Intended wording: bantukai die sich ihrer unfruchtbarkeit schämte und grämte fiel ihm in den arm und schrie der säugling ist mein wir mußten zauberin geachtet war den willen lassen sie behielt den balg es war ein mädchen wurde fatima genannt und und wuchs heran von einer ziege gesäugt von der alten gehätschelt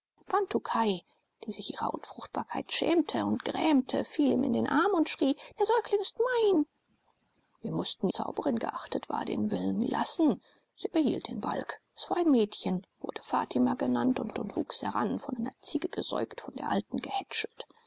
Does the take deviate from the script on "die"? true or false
false